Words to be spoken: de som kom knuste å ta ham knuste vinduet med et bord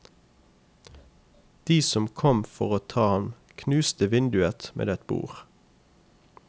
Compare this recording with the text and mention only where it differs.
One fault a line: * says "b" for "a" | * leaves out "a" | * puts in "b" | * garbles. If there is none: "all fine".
* says "for" for "knuste"